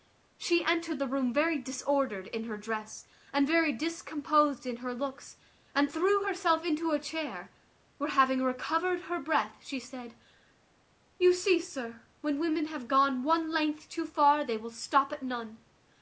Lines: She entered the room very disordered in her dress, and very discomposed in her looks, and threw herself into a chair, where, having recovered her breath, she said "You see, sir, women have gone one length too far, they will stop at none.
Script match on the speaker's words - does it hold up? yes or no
no